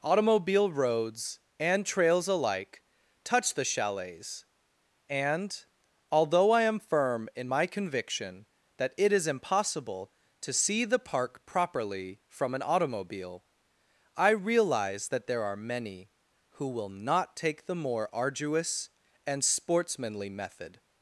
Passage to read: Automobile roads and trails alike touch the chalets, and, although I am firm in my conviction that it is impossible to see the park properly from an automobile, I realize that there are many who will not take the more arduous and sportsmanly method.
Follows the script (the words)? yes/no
yes